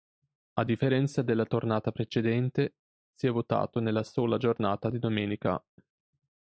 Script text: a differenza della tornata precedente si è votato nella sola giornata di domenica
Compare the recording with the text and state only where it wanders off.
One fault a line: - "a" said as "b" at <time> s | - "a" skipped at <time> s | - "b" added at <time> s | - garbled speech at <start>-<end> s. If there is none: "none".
none